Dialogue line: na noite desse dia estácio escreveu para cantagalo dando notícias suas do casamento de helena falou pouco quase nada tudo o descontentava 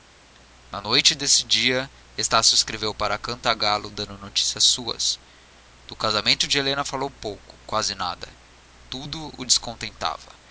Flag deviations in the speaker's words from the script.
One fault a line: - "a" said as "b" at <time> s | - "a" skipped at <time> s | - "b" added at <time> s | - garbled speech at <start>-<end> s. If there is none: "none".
none